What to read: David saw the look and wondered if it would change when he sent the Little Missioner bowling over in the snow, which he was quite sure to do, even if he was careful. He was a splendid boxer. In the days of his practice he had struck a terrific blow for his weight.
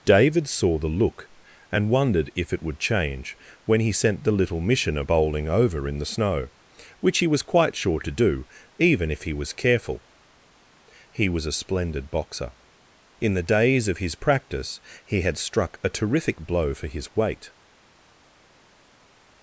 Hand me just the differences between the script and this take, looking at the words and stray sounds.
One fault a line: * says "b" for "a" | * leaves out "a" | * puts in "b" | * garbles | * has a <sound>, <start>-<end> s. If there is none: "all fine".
all fine